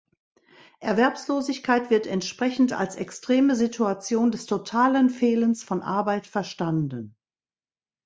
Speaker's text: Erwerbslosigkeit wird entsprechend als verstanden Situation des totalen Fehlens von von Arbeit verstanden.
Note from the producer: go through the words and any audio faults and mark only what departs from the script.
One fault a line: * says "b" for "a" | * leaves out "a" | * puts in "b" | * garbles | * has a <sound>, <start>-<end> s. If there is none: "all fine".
* says "extreme" for "verstanden"
* leaves out "von"